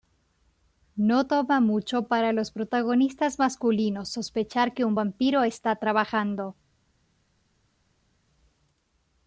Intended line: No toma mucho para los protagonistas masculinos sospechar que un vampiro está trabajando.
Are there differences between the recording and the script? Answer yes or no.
no